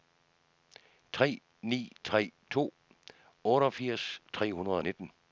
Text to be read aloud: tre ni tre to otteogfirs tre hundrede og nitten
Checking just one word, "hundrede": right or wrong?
right